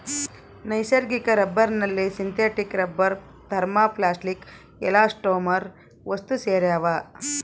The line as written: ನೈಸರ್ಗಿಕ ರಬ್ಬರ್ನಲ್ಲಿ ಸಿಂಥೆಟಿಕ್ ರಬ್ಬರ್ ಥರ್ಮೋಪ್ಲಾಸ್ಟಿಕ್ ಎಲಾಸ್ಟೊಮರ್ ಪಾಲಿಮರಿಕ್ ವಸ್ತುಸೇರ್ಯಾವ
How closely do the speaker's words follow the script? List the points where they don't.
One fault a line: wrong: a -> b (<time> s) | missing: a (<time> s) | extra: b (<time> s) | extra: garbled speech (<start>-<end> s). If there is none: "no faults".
missing: ಪಾಲಿಮರಿಕ್ (5.7 s)